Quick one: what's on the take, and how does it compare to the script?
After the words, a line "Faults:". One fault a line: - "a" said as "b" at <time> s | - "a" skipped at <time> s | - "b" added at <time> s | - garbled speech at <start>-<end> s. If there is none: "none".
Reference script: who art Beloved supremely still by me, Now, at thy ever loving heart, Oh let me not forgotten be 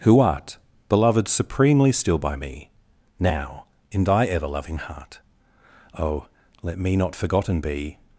who art Beloved supremely still by me, Now, in thy ever loving heart, Oh let me not forgotten be
Faults:
- "at" said as "in" at 3.9 s